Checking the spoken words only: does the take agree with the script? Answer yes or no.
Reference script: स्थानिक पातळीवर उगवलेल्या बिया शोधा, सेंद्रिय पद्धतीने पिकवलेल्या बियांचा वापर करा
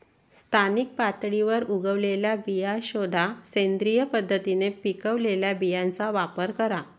yes